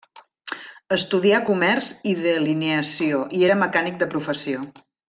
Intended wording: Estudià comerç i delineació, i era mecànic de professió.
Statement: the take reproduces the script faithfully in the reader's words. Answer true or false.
true